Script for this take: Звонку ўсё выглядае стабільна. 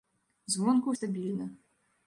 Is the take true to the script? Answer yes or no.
no